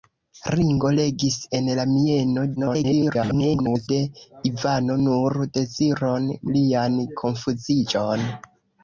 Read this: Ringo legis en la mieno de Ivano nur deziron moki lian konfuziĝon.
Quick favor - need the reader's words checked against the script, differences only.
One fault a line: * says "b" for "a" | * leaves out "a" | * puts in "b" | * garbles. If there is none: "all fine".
* garbles
* leaves out "moki"